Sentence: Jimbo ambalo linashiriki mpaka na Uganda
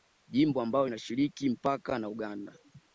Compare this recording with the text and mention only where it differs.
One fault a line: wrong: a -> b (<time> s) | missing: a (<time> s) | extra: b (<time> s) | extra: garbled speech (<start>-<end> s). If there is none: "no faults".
no faults